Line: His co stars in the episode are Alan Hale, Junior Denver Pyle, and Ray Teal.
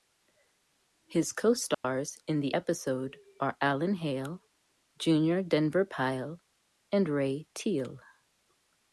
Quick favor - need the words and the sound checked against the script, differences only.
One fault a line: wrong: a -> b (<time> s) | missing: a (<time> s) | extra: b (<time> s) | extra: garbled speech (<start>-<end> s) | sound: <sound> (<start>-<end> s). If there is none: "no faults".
sound: dropout (1.7-1.8 s)